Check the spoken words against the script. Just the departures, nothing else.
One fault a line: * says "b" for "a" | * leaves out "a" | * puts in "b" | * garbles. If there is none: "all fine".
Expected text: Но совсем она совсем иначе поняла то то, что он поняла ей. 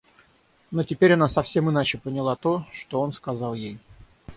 * says "теперь" for "совсем"
* leaves out "то"
* says "сказал" for "поняла"